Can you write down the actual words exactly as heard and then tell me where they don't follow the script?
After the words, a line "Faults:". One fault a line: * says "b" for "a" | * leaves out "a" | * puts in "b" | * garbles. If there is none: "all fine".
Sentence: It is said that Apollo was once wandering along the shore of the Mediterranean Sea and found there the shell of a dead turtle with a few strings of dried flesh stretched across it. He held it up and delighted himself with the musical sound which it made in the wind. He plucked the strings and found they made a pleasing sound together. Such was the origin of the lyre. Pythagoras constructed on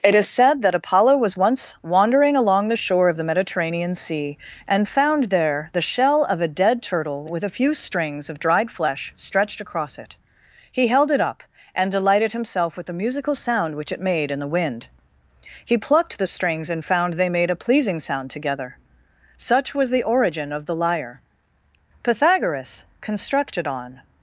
It is said that Apollo was once wandering along the shore of the Mediterranean Sea and found there the shell of a dead turtle with a few strings of dried flesh stretched across it. He held it up and delighted himself with the musical sound which it made in the wind. He plucked the strings and found they made a pleasing sound together. Such was the origin of the lyre. Pythagoras constructed on
Faults:
all fine